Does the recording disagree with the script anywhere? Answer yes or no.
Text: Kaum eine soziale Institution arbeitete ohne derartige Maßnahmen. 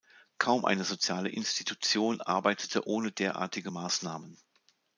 no